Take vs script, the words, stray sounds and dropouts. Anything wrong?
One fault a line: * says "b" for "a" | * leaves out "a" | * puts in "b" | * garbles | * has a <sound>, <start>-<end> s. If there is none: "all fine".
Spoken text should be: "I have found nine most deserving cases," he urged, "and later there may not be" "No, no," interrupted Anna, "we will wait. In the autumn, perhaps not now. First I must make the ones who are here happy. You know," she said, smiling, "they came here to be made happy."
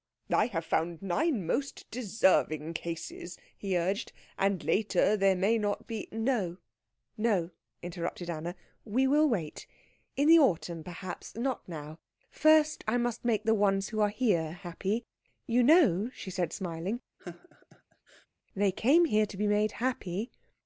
* has a laugh, 17.2-18.3 s